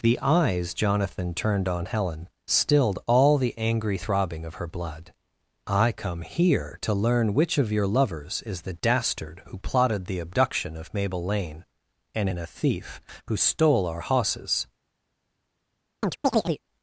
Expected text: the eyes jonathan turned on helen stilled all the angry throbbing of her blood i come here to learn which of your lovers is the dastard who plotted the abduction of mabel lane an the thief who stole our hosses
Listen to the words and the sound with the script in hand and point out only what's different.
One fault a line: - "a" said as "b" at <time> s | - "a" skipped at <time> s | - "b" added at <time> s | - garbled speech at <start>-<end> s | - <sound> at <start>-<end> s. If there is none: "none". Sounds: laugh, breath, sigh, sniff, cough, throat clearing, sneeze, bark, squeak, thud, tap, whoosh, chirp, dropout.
- "an the" said as "and in a" at 12.1 s
- chirp at 16.0-16.6 s